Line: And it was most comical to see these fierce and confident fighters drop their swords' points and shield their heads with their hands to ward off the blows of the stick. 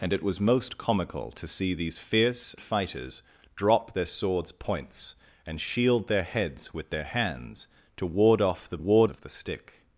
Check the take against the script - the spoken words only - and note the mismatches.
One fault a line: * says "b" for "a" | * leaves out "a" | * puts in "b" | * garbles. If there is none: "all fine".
* leaves out "and confident"
* says "ward" for "blows"